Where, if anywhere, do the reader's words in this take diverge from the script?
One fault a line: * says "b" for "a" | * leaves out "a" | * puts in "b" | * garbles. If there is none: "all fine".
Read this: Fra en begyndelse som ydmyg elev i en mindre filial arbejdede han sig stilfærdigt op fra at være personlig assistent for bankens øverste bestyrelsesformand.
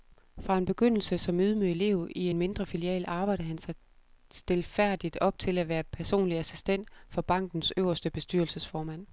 * says "til" for "fra"